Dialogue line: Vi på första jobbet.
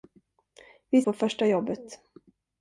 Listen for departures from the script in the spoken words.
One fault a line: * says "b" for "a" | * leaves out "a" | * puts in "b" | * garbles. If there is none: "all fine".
all fine